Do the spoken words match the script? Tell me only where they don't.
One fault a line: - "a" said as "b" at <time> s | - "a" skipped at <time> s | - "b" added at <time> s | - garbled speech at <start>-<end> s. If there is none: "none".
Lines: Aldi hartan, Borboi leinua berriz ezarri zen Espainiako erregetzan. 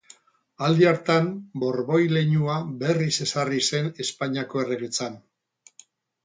none